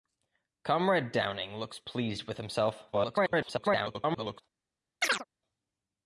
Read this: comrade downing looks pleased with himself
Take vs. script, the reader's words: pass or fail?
fail